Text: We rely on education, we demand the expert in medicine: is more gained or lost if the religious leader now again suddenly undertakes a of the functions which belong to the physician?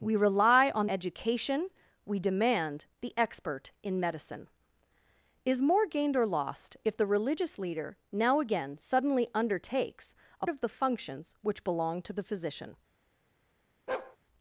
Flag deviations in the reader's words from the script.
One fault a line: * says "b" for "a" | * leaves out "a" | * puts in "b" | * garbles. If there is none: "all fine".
all fine